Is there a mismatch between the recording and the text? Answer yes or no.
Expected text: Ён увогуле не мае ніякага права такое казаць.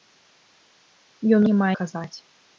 yes